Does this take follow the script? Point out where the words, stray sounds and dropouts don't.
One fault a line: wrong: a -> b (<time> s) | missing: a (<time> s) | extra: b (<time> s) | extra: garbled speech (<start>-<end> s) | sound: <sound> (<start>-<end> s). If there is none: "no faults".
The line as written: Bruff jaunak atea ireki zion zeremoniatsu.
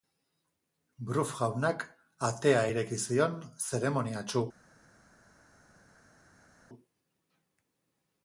no faults